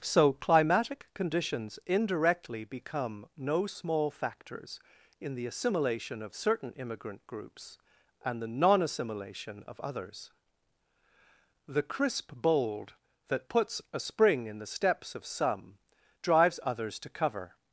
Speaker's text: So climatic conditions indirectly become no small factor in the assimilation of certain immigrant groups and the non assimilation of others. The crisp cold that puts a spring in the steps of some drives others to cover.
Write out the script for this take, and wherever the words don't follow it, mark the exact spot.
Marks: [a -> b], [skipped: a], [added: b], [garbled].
So climatic conditions indirectly become no small [factor -> factors] in the assimilation of certain immigrant groups and the non assimilation of others. The crisp [cold -> bold] that puts a spring in the steps of some drives others to cover.